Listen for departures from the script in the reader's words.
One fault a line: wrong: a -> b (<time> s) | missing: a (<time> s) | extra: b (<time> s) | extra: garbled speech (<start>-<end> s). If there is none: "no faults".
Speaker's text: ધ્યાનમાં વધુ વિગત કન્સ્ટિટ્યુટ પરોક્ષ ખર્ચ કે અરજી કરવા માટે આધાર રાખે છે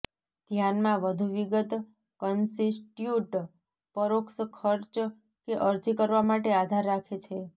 no faults